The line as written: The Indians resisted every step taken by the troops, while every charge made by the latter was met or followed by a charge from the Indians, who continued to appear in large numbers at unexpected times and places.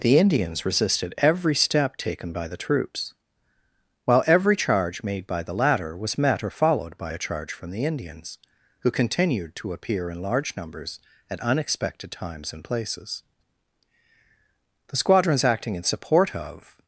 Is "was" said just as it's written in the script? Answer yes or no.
yes